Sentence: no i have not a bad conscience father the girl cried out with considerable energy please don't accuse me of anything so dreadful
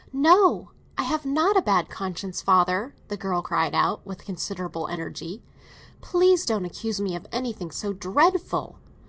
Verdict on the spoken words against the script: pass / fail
pass